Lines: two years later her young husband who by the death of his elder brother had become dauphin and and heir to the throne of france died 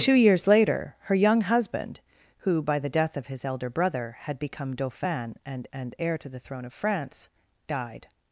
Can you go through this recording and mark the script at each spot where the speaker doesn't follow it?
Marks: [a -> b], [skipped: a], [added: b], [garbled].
two years later her young husband who by the death of his elder brother had become dauphin and and heir to the throne of france died